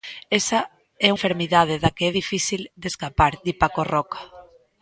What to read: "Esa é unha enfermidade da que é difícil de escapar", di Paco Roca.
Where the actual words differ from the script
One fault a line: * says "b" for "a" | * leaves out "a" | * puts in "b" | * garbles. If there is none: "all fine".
* leaves out "unha"